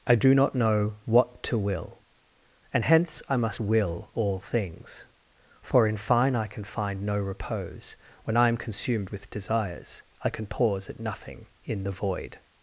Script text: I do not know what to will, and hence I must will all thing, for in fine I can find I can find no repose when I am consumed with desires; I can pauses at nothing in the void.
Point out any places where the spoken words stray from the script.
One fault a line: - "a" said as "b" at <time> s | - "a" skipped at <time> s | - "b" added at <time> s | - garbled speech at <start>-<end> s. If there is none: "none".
- "thing" said as "things" at 4.4 s
- "I can find" skipped at 7.0 s
- "pauses" said as "pause" at 10.5 s